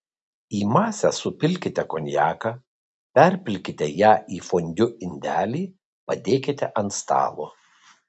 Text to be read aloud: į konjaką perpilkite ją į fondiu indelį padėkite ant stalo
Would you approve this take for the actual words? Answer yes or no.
no